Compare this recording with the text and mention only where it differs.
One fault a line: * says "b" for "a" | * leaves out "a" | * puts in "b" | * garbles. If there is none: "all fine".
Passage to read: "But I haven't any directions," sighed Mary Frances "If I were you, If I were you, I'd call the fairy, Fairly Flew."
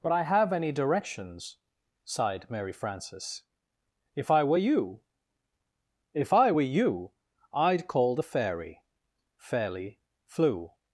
* says "have" for "haven't"